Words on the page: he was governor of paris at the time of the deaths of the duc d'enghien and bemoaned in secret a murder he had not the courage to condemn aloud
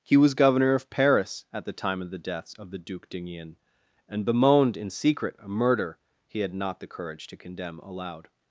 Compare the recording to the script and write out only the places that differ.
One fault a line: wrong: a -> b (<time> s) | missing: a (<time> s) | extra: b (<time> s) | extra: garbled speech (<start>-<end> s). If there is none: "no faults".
no faults